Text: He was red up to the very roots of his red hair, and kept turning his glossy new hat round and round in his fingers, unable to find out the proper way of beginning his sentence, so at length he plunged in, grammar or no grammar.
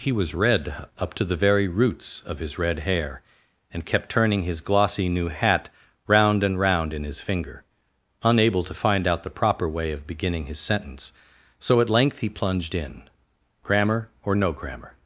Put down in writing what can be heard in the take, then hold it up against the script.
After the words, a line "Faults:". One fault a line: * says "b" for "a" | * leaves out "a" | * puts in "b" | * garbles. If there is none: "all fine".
He was red up to the very roots of his red hair, and kept turning his glossy new hat round and round in his finger, unable to find out the proper way of beginning his sentence, so at length he plunged in, grammar or no grammar.
Faults:
* says "finger" for "fingers"